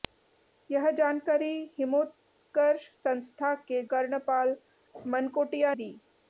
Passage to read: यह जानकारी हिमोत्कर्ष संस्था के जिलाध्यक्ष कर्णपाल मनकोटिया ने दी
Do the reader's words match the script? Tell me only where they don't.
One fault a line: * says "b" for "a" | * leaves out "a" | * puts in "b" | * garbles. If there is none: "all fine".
* leaves out "जिलाध्यक्ष"
* leaves out "ने"